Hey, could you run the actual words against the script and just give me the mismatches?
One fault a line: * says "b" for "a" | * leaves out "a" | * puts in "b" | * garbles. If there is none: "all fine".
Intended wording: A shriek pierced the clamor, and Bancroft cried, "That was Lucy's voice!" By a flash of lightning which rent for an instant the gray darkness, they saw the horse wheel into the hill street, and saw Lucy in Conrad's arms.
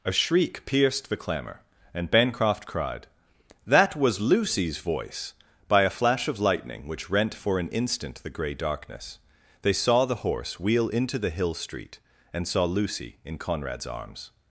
all fine